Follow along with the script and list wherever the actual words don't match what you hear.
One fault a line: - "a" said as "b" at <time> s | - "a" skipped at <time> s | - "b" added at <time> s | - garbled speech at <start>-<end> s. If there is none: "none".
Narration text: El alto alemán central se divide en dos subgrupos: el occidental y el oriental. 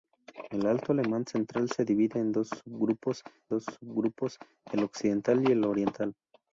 - "dos subgrupos" added at 3.5 s